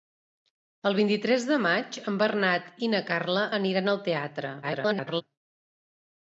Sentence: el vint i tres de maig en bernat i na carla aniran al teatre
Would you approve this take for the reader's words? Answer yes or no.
no